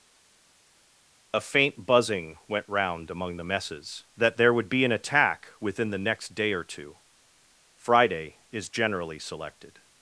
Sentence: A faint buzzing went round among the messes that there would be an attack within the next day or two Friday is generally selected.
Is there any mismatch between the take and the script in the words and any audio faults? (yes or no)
no